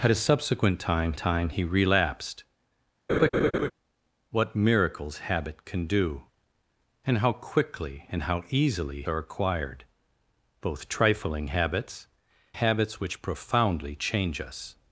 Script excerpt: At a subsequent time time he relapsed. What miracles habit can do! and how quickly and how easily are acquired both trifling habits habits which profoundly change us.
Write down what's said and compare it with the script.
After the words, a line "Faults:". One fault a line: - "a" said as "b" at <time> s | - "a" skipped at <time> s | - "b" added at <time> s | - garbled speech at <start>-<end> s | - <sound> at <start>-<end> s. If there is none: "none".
At a subsequent time time he relapsed. What miracles habit can do! and how quickly and how easily are acquired both trifling habits habits which profoundly change us.
Faults:
- laugh at 3.1-3.7 s